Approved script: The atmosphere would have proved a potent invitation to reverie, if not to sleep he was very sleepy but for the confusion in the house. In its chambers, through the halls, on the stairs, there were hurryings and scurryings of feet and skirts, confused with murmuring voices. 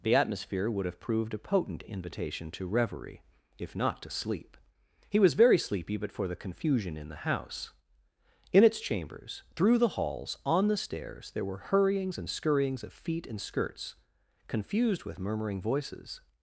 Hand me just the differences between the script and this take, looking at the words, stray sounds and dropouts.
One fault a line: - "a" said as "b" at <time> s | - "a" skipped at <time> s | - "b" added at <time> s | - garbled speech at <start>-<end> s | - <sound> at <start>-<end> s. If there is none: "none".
none